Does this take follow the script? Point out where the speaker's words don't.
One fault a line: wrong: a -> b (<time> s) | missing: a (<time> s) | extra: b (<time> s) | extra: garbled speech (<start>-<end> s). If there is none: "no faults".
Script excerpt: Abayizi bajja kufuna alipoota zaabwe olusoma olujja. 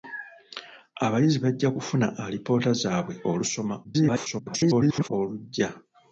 extra: garbled speech (3.8-5.1 s)